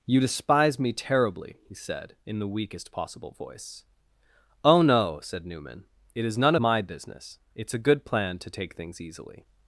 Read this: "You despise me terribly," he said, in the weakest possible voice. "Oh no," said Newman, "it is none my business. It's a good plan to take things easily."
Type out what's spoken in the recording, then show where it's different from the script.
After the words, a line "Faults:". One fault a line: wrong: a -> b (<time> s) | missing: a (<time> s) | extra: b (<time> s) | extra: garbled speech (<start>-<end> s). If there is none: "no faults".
"You despise me terribly," he said, in the weakest possible voice. "Oh no," said Newman, "it is none my business. It's a good plan to take things easily."
Faults:
no faults